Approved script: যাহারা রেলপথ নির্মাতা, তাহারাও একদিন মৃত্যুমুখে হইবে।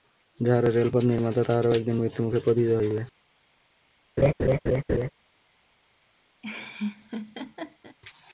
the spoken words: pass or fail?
fail